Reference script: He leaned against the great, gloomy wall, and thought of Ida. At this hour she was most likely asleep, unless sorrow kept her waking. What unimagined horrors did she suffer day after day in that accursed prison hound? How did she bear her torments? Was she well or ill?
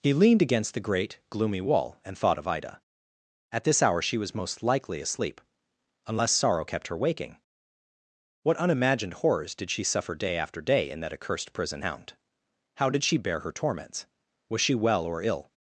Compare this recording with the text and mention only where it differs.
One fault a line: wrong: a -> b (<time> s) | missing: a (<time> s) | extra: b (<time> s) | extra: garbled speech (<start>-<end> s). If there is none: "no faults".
no faults